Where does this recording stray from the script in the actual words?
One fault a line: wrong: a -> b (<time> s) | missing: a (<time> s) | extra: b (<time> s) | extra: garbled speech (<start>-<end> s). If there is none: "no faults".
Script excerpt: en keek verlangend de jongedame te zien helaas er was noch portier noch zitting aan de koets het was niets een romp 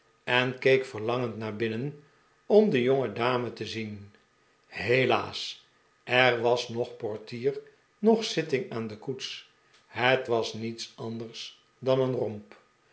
extra: naar binnen om (1.4 s)
extra: anders dan (10.9 s)